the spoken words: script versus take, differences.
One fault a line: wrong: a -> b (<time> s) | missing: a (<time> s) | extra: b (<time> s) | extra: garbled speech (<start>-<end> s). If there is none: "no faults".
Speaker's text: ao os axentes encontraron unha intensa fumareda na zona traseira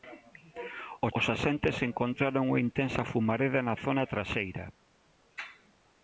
no faults